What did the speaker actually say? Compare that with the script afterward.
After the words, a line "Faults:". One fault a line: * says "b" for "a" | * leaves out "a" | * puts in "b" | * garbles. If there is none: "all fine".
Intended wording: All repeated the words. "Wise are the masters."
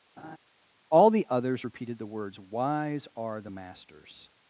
All the others repeated the words. "Wise are the masters."
Faults:
* puts in "the others"